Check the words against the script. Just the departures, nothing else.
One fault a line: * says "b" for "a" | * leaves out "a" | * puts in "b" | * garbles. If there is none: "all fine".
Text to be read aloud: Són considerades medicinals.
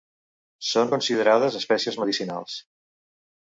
* puts in "espècies"